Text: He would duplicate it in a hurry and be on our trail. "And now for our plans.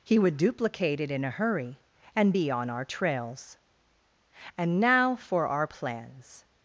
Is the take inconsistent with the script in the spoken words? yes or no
yes